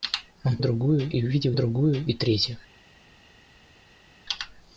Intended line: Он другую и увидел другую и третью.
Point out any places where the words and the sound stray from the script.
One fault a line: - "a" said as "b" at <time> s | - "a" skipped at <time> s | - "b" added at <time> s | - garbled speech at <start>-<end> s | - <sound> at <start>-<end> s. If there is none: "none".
none